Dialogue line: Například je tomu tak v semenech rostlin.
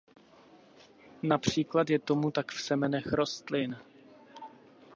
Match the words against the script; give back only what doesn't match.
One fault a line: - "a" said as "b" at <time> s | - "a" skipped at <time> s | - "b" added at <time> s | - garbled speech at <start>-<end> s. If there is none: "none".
none